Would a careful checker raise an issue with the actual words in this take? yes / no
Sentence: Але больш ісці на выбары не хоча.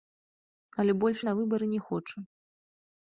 yes